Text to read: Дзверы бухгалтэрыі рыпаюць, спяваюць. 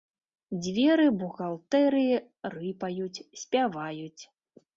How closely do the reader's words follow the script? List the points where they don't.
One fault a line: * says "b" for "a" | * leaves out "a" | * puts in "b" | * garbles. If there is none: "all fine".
all fine